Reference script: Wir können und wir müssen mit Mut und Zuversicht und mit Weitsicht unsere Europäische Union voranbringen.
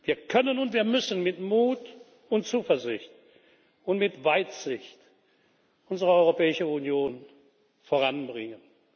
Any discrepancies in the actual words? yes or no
no